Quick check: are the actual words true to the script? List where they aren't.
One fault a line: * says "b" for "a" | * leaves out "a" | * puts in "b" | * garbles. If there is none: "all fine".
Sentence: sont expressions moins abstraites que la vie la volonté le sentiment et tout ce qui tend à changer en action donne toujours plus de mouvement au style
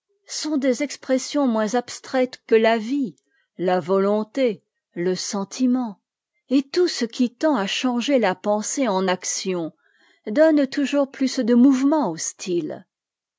* puts in "des"
* puts in "la pensée"